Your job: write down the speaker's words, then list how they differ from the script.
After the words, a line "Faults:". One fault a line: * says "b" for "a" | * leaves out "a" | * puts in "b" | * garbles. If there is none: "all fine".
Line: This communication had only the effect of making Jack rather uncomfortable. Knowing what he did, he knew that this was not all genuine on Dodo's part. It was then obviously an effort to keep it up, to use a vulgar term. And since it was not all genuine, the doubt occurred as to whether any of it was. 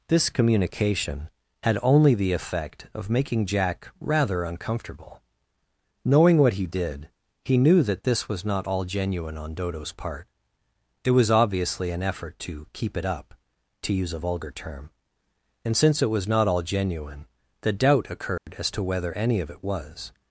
This communication had only the effect of making Jack rather uncomfortable. Knowing what he did, he knew that this was not all genuine on Dodo's part. It was obviously an effort to keep it up, to use a vulgar term. And since it was not all genuine, the doubt occurred as to whether any of it was.
Faults:
* leaves out "then"